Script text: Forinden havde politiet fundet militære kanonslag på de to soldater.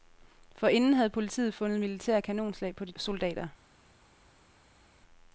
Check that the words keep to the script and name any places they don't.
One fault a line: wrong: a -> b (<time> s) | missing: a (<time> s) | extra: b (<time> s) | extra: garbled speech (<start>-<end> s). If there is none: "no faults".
missing: to (2.9 s)